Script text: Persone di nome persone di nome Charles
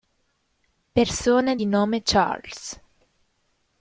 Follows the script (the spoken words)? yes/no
no